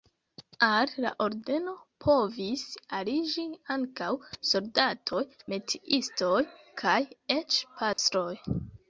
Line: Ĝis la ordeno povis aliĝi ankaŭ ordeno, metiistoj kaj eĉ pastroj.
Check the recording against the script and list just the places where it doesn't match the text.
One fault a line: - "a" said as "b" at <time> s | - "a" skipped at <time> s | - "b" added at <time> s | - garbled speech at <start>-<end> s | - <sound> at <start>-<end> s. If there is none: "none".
- "Ĝis" said as "Al" at 0.7 s
- "ordeno" said as "soldatoj" at 4.5 s
- dropout at 7.9-8.0 s